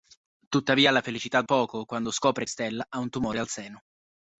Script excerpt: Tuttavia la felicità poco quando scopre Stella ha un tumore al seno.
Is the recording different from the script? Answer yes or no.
no